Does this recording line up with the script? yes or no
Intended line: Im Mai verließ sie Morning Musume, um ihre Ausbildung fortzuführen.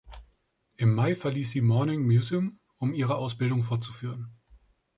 yes